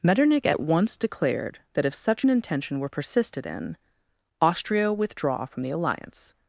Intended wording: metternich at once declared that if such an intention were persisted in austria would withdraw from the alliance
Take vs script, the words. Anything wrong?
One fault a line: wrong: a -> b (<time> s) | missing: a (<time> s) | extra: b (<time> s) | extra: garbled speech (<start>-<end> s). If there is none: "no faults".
missing: would (4.9 s)